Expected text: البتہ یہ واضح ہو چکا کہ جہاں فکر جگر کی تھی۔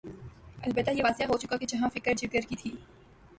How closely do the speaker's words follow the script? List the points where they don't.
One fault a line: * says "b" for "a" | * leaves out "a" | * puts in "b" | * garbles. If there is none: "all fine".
all fine